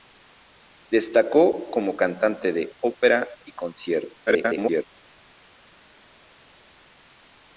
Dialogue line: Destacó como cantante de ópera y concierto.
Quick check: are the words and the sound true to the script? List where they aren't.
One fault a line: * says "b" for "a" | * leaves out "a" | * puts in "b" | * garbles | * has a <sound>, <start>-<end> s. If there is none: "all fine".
* garbles